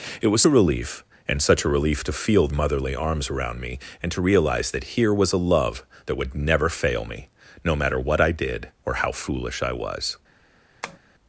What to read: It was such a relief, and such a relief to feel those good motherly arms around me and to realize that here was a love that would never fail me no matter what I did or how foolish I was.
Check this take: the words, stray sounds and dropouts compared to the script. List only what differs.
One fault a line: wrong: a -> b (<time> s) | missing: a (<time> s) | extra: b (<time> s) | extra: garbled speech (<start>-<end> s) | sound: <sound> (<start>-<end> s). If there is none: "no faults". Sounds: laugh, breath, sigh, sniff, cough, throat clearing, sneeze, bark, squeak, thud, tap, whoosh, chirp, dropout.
missing: such (0.4 s)
missing: those good (2.5 s)
sound: tap (10.8-11.0 s)